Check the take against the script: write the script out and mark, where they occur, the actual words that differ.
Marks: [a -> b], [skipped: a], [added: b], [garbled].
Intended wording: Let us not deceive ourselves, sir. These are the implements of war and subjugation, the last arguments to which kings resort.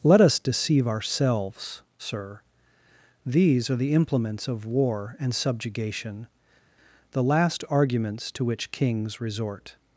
Let us [skipped: not] deceive ourselves, sir. These are the implements of war and subjugation, the last arguments to which kings resort.